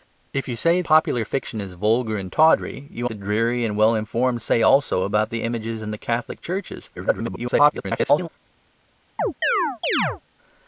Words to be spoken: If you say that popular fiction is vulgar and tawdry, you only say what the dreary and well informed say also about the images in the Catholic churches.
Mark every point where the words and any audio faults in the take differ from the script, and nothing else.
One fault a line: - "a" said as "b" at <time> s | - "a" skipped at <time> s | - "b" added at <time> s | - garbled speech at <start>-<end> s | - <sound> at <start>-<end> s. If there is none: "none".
- "that" skipped at 0.8 s
- "only say what" skipped at 3.1 s
- garbled speech at 7.0-8.3 s
- chirp at 9.2-10.2 s